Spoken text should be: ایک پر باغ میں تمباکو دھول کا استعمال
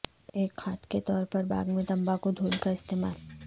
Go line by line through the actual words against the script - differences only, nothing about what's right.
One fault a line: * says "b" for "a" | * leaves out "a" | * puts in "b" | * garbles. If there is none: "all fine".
* puts in "کھاد کے طور"